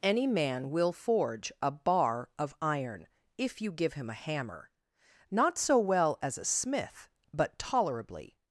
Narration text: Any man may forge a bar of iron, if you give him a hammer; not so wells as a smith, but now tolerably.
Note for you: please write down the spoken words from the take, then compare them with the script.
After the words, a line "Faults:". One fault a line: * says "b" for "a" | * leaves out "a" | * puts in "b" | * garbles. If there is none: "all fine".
Any man will forge a bar of iron, if you give him a hammer; not so well as a smith, but tolerably.
Faults:
* says "will" for "may"
* says "well" for "wells"
* leaves out "now"